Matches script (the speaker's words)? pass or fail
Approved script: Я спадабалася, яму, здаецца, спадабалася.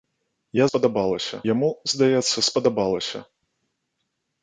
pass